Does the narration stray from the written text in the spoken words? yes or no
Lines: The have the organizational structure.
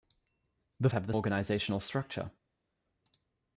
no